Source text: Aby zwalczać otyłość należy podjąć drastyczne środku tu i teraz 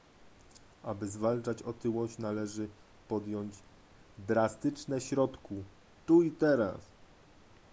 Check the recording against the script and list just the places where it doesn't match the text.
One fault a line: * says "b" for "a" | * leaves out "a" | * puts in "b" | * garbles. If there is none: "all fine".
all fine